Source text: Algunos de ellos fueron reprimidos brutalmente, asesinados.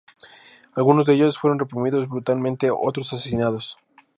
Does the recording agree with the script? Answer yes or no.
no